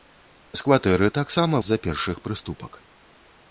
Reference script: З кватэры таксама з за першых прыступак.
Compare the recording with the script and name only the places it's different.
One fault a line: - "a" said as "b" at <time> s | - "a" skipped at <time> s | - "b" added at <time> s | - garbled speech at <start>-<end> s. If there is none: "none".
none